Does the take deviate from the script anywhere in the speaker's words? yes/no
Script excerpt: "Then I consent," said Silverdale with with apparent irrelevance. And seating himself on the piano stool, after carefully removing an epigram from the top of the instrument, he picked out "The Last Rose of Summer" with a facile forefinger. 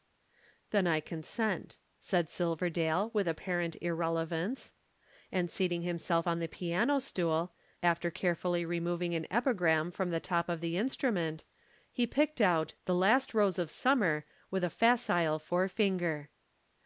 yes